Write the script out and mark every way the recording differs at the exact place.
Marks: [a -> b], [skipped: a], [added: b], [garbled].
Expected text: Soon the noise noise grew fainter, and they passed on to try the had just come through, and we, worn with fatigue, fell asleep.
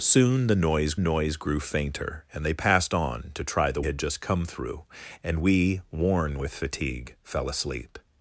Soon the noise noise grew fainter, and they passed on to try the had just come through, and we, worn with fatigue, fell asleep.